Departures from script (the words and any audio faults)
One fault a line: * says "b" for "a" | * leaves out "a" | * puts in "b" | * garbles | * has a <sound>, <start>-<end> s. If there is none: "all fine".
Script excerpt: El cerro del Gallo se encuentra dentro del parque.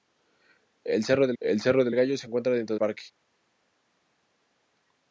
* puts in "el cerro del"
* leaves out "del"